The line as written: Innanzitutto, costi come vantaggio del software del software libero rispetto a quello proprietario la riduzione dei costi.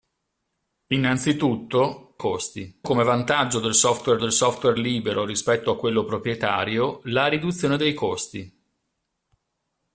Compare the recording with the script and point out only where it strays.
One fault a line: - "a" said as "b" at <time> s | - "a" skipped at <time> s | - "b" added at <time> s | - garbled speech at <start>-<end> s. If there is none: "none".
none